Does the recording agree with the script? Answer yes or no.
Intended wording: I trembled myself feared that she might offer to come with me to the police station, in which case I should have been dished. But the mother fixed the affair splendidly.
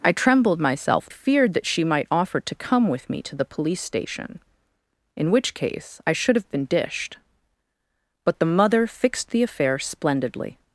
yes